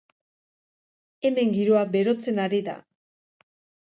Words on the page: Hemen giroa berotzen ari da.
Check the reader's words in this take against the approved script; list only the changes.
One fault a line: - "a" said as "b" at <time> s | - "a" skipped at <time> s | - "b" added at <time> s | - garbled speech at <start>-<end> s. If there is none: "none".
none